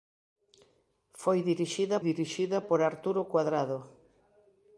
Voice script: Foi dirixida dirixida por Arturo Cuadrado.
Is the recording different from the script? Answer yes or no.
no